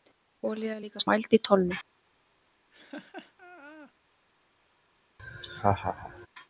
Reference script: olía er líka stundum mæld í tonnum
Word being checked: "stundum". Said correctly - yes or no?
no